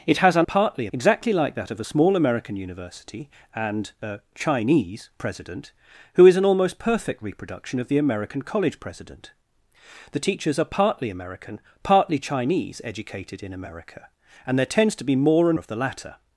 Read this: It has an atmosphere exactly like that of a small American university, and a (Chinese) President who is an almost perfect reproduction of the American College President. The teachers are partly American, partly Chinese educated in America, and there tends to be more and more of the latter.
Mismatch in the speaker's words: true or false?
true